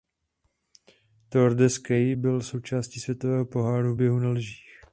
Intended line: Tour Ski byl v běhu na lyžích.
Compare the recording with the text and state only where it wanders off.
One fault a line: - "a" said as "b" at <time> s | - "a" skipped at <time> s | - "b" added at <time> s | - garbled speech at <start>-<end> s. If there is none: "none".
- "de" added at 1.6 s
- "součástí Světového poháru" added at 2.4 s